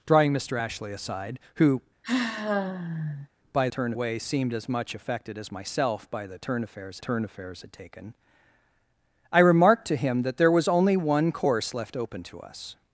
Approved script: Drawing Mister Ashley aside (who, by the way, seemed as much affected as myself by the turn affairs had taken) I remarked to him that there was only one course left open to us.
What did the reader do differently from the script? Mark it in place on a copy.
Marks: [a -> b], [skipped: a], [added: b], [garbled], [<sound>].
Drawing Mister Ashley aside (who, [sigh] by [the -> turn] way, seemed as much affected as myself by the turn affairs [added: turn affairs] had taken) I remarked to him that there was only one course left open to us.